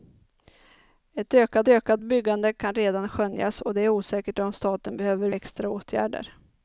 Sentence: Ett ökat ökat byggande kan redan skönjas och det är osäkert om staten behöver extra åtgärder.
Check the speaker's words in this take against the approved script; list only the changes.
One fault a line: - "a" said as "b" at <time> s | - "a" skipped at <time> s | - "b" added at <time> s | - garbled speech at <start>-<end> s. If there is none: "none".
none